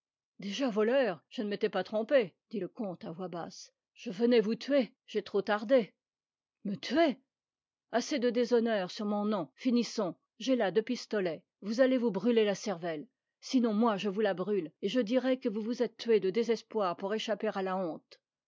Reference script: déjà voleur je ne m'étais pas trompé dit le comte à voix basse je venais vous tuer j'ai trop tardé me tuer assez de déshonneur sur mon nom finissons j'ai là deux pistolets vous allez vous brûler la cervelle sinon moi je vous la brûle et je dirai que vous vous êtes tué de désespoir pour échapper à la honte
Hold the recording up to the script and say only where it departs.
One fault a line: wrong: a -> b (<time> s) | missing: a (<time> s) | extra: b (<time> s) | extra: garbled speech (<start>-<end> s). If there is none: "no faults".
no faults